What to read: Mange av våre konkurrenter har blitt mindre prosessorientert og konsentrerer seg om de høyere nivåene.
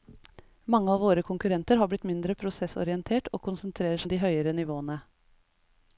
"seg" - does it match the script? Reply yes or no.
no